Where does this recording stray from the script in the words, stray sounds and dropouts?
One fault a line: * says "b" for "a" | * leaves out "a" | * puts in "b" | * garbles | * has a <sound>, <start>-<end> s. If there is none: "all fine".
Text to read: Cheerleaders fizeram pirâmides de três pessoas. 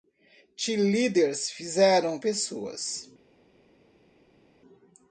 * leaves out "pirâmides de três"